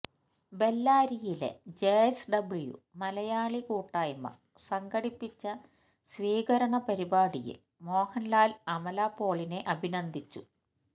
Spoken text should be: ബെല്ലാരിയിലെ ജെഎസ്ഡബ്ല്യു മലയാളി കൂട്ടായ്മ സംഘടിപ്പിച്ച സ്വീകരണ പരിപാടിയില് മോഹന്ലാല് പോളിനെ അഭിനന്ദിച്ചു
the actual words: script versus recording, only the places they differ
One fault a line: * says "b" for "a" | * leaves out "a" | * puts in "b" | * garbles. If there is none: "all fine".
* puts in "അമല"